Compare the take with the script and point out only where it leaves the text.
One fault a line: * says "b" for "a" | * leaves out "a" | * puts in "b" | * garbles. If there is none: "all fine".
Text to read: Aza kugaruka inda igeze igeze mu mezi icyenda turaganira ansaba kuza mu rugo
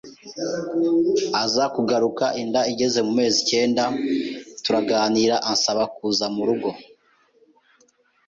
* leaves out "igeze"